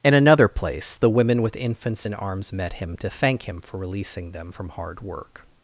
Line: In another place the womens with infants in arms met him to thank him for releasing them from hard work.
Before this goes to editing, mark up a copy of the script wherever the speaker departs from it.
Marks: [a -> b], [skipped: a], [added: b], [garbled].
In another place the [womens -> women] with infants in arms met him to thank him for releasing them from hard work.